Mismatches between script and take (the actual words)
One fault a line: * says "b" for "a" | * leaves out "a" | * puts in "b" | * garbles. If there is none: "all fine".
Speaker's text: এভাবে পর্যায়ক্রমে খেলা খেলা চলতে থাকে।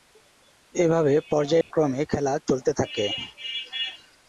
* leaves out "খেলা"